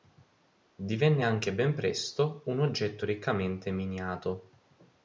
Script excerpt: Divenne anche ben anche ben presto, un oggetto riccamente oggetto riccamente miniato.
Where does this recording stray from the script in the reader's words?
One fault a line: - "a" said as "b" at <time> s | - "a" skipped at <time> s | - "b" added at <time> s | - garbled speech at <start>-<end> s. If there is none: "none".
- "anche ben" skipped at 1.7 s
- "oggetto riccamente" skipped at 3.7 s